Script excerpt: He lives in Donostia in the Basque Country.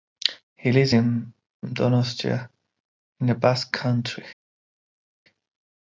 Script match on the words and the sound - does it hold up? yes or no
yes